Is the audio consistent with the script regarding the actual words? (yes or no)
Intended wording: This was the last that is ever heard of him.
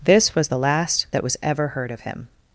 no